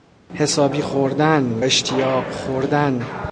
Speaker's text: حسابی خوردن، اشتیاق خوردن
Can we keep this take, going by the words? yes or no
yes